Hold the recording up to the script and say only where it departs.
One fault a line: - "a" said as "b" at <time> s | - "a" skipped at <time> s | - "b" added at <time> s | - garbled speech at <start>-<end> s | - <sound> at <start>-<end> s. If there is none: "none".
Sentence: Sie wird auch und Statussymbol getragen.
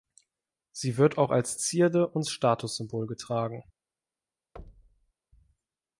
- "als Zierde" added at 1.3 s
- thud at 4.6-5.1 s